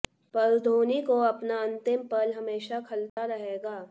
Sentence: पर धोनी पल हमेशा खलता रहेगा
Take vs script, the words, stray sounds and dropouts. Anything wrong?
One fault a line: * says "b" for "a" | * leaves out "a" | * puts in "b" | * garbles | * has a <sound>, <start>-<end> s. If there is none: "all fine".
* puts in "को अपना अंतिम"
* has a dropout, 3.1-3.2 s